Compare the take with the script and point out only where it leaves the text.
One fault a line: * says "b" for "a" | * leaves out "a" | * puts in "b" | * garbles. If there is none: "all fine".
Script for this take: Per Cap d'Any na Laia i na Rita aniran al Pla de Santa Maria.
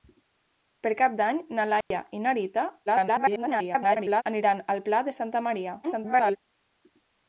* garbles
* garbles